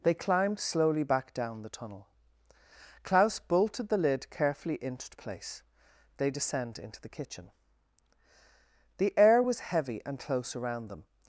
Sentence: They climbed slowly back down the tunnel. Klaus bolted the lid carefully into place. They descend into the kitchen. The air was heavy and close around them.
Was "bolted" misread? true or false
false